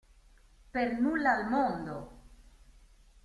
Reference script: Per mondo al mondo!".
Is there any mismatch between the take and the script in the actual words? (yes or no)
yes